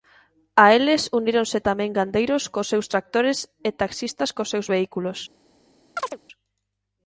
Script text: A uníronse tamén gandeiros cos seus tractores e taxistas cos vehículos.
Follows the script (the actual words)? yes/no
no